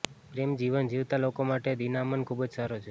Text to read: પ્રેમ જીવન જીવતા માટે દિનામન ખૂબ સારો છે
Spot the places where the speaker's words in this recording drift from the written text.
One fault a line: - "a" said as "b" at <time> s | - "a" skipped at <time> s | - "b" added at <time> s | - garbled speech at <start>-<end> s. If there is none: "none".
- "લોકો" added at 1.2 s
- "જ" added at 2.4 s